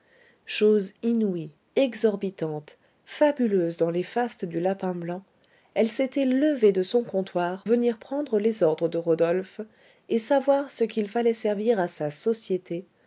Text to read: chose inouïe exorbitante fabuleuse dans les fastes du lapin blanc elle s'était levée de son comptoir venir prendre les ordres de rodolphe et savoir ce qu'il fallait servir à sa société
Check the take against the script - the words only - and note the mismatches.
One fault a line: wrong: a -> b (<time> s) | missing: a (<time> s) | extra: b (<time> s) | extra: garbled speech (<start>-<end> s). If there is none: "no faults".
no faults